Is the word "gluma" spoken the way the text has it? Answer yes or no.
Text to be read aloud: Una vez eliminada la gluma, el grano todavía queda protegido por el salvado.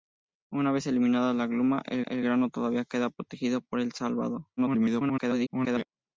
yes